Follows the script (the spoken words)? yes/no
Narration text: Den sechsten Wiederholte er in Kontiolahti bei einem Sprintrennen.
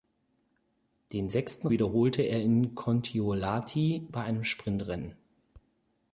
yes